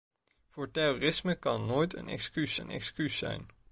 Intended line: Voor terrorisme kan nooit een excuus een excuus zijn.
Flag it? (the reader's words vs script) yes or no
no